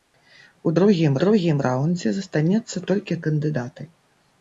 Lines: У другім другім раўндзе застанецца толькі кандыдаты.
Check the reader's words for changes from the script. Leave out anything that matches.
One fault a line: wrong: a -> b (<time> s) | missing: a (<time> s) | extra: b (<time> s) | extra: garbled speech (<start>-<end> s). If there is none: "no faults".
no faults